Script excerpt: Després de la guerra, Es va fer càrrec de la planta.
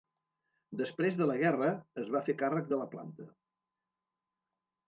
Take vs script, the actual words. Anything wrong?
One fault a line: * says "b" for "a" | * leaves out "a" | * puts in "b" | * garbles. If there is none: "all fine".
all fine